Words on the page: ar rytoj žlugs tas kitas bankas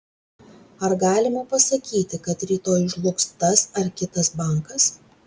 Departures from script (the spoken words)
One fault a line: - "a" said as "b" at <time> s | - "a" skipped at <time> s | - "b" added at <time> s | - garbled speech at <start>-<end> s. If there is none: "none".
- "galima pasakyti kad" added at 1.0 s
- "ar" added at 3.8 s